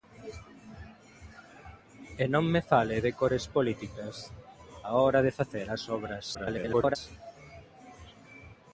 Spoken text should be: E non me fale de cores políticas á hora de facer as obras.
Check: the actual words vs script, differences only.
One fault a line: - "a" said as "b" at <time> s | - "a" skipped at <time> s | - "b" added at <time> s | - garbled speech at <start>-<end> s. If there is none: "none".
- garbled speech at 6.3-7.0 s